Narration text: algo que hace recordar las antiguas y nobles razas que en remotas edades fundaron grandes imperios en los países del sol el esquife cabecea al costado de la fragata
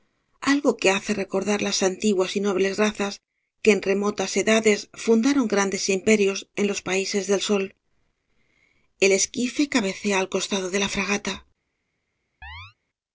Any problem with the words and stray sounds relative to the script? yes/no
yes